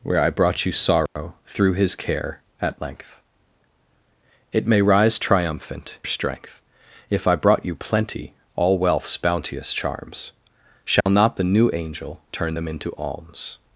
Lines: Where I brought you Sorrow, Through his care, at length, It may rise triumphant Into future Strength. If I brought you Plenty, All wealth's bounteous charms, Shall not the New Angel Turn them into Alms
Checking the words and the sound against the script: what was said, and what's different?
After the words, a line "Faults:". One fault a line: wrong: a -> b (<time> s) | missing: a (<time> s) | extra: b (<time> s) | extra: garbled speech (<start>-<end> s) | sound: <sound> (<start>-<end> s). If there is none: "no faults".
Where I brought you Sorrow, Through his care, at length, It may rise triumphant Strength. If I brought you Plenty, All wealth's bounteous charms, Shall not the New Angel Turn them into Alms
Faults:
sound: dropout (1.1-1.2 s)
missing: Into future (6.0 s)
sound: dropout (11.0-11.1 s)